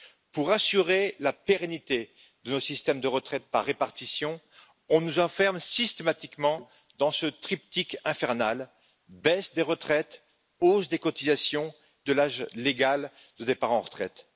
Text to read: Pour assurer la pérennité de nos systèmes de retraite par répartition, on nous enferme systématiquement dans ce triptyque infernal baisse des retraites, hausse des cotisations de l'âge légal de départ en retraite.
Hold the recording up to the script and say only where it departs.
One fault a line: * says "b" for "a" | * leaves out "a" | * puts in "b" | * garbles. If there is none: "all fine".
all fine